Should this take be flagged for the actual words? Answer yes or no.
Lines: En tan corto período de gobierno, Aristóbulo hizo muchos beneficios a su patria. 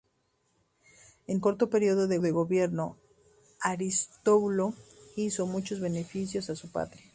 yes